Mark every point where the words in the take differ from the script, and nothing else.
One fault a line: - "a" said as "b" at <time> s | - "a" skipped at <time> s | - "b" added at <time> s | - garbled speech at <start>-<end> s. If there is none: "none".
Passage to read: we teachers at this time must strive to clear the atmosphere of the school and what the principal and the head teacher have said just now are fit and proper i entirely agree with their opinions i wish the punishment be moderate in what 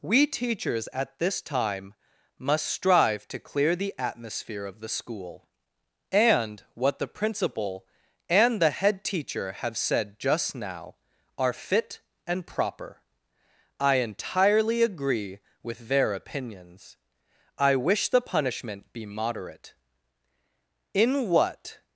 none